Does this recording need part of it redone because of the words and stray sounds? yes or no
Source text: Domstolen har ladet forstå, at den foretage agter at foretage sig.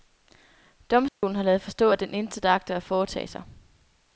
yes